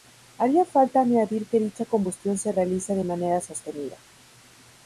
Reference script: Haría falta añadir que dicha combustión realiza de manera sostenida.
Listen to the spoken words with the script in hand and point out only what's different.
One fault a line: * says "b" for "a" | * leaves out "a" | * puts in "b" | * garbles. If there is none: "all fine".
* puts in "se"